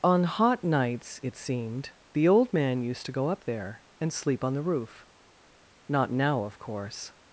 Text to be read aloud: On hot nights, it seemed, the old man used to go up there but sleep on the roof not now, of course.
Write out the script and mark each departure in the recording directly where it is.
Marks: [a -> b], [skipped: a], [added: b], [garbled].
On hot nights, it seemed, the old man used to go up there [but -> and] sleep on the roof not now, of course.